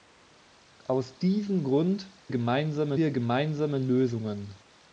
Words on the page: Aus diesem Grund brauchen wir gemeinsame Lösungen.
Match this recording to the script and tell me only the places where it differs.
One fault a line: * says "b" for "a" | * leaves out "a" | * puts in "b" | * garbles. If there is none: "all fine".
* says "gemeinsame" for "brauchen"